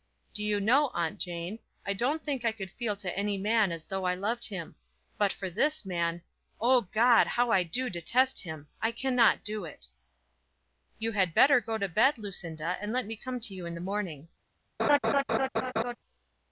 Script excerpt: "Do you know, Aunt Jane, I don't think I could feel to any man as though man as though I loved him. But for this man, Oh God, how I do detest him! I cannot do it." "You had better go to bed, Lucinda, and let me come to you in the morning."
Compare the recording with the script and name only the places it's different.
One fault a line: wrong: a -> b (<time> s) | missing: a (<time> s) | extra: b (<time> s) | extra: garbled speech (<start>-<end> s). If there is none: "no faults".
missing: man as though (4.0 s)